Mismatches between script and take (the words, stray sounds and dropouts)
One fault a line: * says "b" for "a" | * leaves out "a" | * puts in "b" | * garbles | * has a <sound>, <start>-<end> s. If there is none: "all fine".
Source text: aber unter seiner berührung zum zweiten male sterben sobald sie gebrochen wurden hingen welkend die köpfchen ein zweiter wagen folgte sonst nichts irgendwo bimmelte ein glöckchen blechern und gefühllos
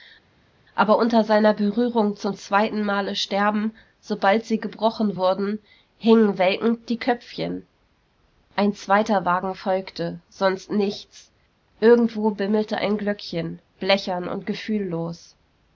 all fine